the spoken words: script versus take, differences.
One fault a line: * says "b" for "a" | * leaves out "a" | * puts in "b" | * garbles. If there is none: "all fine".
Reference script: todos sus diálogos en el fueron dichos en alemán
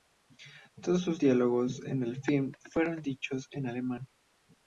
* puts in "film"